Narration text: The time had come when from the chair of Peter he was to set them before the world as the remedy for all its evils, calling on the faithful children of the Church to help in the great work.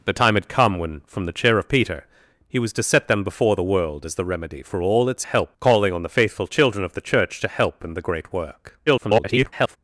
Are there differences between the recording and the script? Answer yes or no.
yes